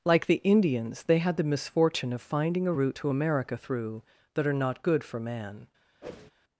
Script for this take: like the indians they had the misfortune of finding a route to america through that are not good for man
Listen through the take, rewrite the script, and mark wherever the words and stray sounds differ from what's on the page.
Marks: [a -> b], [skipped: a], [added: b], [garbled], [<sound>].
like the indians they had the misfortune of finding a route to america through that are not good for man [whoosh]